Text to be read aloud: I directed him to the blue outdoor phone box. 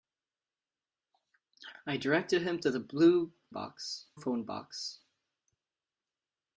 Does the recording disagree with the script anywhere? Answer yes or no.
yes